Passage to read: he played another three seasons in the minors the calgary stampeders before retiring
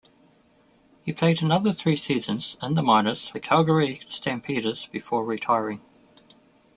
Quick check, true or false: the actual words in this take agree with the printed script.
true